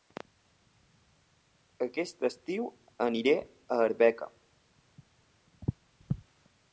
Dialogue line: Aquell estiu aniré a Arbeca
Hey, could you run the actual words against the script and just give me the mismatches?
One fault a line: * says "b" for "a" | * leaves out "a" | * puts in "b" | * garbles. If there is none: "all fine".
* says "Aquest" for "Aquell"